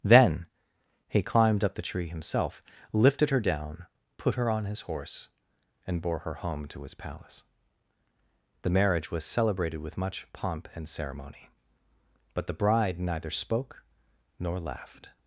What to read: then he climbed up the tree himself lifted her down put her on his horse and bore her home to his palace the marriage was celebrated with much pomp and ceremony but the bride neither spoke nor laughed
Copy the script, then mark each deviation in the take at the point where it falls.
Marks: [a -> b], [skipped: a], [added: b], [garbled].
then he climbed up the tree himself lifted her down put her on his horse and bore her home to his palace the marriage was celebrated with much pomp and ceremony but the bride neither spoke nor laughed